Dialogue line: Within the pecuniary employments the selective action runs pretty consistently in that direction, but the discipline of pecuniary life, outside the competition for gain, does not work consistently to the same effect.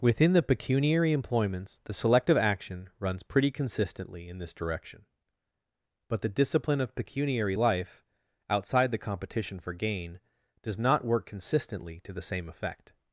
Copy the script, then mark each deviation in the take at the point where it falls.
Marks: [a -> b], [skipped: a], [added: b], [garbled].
Within the pecuniary employments the selective action runs pretty consistently in [that -> this] direction, but the discipline of pecuniary life, outside the competition for gain, does not work consistently to the same effect.